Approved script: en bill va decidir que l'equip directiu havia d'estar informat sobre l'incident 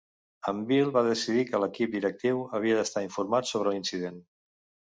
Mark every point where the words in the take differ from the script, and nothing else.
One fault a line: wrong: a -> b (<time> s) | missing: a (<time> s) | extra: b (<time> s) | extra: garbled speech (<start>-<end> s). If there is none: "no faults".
no faults